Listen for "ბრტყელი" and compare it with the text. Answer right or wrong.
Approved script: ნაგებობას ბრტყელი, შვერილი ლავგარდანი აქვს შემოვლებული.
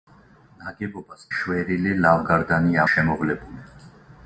wrong